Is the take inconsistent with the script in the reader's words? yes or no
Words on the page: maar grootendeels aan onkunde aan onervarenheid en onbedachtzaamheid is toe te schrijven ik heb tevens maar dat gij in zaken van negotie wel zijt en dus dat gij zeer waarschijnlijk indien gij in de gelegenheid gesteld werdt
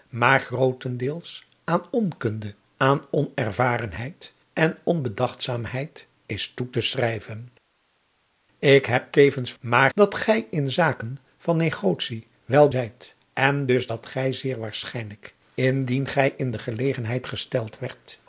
no